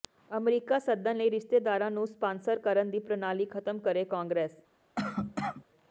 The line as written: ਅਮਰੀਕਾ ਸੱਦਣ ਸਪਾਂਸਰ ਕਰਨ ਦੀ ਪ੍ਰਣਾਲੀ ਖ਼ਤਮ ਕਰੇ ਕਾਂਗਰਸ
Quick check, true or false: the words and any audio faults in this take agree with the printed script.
false